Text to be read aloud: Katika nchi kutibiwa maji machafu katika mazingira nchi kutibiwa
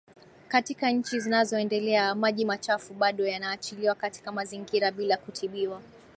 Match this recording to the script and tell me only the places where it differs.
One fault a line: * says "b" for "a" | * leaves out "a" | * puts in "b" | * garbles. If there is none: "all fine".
* says "zinazoendelea" for "kutibiwa"
* puts in "bado yanaachiliwa"
* says "bila" for "nchi"